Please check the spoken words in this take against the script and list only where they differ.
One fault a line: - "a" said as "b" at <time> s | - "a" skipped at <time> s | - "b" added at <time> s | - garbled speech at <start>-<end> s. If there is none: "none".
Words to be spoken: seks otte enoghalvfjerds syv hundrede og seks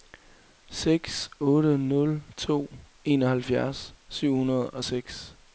- "nul to" added at 1.8 s